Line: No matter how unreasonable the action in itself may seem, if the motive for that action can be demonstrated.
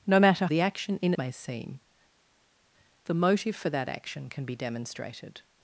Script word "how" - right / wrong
wrong